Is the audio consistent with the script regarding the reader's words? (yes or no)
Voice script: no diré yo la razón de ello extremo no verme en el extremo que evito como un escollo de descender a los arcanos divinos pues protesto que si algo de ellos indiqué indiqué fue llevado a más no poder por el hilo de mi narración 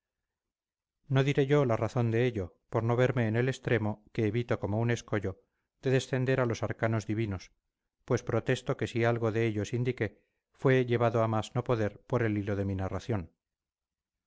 no